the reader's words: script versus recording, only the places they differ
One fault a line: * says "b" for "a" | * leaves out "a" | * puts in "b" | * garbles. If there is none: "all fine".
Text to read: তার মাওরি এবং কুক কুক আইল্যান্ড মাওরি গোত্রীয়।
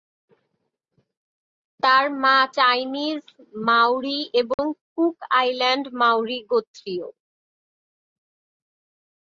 * puts in "মা চাইনিজ"
* leaves out "কুক"